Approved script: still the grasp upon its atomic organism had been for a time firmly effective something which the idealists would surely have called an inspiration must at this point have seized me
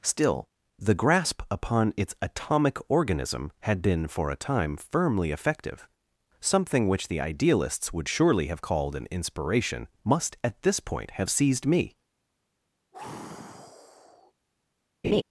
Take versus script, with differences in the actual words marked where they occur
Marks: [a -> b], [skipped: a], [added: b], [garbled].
still the grasp upon its atomic organism had been for a time firmly effective something which the idealists would surely have called an inspiration must at this point have seized me